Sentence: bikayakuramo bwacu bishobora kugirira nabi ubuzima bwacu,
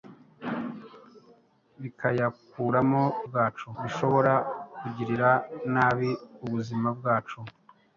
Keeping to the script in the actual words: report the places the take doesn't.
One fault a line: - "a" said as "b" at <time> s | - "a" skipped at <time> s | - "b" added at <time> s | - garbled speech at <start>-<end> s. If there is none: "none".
none